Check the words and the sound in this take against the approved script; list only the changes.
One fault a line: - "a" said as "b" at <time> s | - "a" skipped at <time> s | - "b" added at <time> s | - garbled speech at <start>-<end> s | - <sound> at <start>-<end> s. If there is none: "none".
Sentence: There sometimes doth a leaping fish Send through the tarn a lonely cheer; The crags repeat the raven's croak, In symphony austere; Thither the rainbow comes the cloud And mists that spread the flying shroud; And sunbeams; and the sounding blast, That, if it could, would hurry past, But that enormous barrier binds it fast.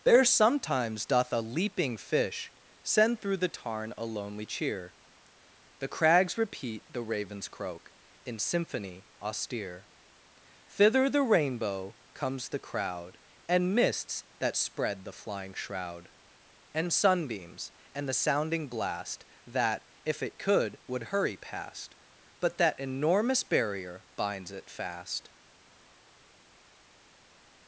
- "cloud" said as "crowd" at 12.6 s